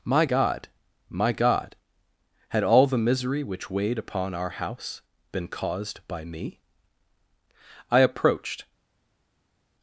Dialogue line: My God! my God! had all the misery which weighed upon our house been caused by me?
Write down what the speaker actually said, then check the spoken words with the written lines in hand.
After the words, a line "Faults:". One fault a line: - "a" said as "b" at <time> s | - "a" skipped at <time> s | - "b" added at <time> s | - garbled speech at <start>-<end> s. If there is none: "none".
My God! my God! had all the misery which weighed upon our house been caused by me? "I approached
Faults:
- "I approached" added at 7.9 s